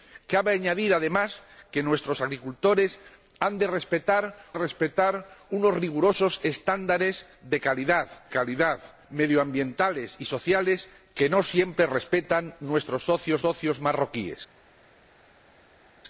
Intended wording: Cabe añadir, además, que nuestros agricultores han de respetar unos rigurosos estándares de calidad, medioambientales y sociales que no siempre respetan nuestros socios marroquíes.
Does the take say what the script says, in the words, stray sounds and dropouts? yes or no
no